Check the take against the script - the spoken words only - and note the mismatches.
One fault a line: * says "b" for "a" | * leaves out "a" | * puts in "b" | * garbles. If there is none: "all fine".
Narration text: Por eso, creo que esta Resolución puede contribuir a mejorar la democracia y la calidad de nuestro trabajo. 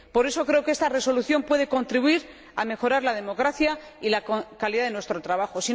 all fine